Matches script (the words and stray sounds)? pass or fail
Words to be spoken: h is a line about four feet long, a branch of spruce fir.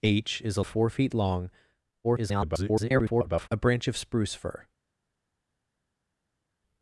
fail